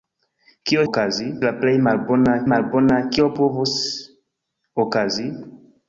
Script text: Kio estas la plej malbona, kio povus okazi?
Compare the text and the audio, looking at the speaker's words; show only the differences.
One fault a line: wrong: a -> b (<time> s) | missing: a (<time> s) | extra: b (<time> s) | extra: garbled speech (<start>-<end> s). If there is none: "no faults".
wrong: estas -> okazi (0.9 s)
extra: malbona (2.5 s)